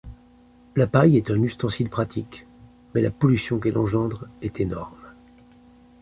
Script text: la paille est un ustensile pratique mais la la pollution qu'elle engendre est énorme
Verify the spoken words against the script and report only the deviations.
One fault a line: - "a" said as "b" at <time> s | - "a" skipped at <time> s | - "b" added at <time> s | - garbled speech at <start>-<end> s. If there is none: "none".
- "la" skipped at 3.1 s